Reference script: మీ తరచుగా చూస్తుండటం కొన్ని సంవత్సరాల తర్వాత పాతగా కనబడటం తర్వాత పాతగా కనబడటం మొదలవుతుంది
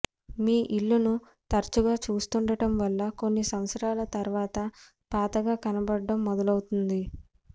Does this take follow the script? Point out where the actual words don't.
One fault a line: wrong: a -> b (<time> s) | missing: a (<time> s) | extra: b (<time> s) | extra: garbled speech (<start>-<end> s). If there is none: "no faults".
extra: ఇల్లును (0.8 s)
extra: వల్ల (2.8 s)
missing: తర్వాత పాతగా కనబడటం (6.2 s)